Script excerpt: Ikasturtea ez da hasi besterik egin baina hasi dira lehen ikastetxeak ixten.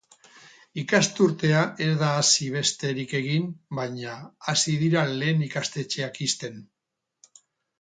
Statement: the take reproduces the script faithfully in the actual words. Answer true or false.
true